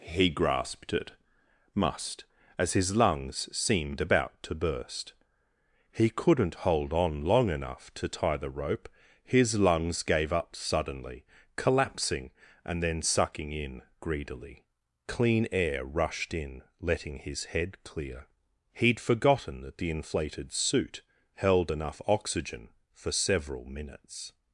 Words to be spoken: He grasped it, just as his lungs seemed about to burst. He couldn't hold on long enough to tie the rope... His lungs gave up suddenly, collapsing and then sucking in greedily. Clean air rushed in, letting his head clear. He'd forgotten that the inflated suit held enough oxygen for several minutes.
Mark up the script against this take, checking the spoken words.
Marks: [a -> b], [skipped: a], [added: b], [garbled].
He grasped it, [just -> must] as his lungs seemed about to burst. He couldn't hold on long enough to tie the rope... His lungs gave up suddenly, collapsing and then sucking in greedily. Clean air rushed in, letting his head clear. He'd forgotten that the inflated suit held enough oxygen for several minutes.